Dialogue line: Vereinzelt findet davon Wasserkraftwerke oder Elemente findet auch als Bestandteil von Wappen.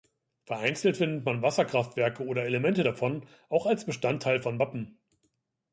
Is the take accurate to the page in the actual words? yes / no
no